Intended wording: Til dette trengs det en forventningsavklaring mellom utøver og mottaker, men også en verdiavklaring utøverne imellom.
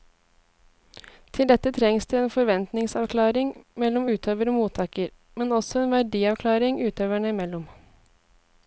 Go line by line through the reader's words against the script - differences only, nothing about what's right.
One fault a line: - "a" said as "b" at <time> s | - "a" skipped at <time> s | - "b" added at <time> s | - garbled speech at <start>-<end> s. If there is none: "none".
none